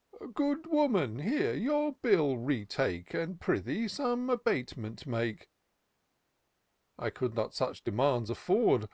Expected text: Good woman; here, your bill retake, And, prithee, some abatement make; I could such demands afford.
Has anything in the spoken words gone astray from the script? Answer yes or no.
yes